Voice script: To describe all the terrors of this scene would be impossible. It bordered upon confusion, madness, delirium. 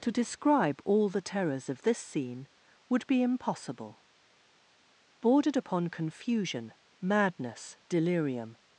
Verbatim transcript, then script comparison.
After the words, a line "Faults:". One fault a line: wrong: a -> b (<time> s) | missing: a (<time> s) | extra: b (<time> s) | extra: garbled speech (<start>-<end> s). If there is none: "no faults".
To describe all the terrors of this scene would be impossible. Bordered upon confusion, madness, delirium.
Faults:
missing: It (4.0 s)